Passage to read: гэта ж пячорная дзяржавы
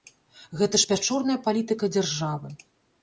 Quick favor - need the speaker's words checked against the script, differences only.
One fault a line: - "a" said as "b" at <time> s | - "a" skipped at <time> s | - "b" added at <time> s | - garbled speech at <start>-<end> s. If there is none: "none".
- "палітыка" added at 1.5 s